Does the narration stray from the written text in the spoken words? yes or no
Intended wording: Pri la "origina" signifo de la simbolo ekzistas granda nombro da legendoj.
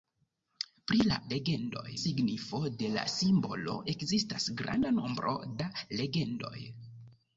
yes